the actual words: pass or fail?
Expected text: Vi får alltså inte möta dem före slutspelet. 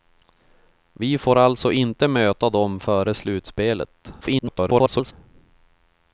fail